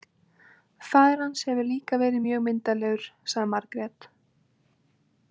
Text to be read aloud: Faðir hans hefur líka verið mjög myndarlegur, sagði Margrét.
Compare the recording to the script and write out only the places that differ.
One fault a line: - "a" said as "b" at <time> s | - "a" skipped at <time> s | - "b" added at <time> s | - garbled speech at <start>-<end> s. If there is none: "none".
none